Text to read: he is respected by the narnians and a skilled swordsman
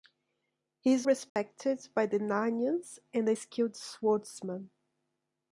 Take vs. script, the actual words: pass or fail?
pass